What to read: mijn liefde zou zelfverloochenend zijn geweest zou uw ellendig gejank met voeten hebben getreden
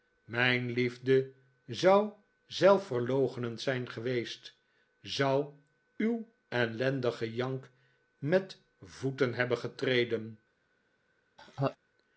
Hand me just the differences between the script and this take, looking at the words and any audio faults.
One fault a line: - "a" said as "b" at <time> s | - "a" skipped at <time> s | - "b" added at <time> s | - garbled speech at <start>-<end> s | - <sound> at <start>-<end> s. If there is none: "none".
- laugh at 11.4-11.8 s